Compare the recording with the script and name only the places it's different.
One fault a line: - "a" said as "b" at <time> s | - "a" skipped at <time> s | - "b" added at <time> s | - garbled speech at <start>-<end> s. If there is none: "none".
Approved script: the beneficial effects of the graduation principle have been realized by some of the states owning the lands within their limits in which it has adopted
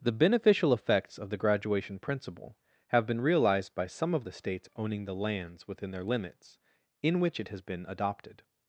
- "been" added at 7.6 s